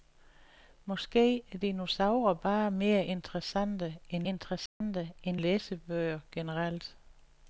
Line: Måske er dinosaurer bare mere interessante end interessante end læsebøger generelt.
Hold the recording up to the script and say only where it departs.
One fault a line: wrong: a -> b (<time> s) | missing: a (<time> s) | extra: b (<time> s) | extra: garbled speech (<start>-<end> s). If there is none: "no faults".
no faults